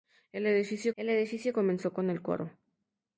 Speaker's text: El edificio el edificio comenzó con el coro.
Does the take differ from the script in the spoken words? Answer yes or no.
no